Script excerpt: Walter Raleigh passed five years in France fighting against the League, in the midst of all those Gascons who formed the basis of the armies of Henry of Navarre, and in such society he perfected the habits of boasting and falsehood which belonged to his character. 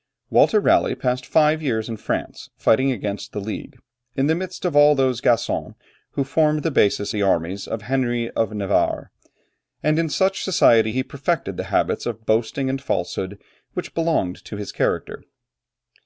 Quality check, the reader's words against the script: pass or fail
fail